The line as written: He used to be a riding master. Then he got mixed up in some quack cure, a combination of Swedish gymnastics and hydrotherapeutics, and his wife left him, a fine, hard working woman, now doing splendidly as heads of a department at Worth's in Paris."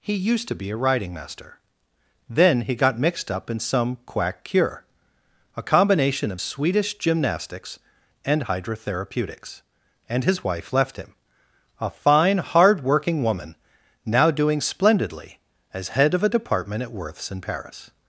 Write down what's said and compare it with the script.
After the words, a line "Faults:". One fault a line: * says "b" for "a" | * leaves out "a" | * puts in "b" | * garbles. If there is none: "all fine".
He used to be a riding master. Then he got mixed up in some quack cure, a combination of Swedish gymnastics and hydrotherapeutics, and his wife left him, a fine, hard working woman, now doing splendidly as head of a department at Worth's in Paris."
Faults:
* says "head" for "heads"